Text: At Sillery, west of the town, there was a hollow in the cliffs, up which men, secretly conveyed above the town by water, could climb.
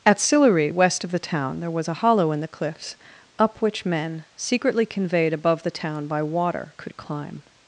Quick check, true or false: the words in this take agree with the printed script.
true